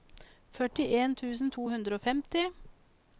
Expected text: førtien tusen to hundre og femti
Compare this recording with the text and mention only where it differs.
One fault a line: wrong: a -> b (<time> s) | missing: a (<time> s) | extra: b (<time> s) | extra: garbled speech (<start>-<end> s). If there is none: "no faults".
no faults